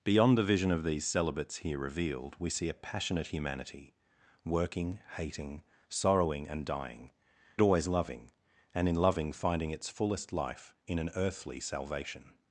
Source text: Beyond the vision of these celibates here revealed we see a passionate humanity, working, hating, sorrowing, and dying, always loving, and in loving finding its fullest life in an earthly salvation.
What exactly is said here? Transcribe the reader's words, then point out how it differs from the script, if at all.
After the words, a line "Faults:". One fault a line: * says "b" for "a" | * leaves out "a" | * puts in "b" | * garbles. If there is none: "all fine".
Beyond the vision of these celibates here revealed we see a passionate humanity, working, hating, sorrowing, and dying, always loving, and in loving finding its fullest life in an earthly salvation.
Faults:
all fine